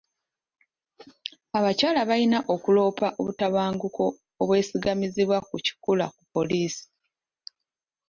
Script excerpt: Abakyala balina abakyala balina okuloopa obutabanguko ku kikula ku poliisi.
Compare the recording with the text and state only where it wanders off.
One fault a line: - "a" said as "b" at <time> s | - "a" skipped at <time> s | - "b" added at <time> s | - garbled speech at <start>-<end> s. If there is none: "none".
- "abakyala balina" skipped at 2.4 s
- "obwesigamizibwa" added at 4.4 s